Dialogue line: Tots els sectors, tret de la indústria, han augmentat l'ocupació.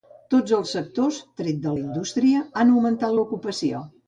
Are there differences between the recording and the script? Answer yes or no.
no